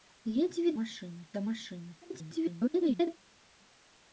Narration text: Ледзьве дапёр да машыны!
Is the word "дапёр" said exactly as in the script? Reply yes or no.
no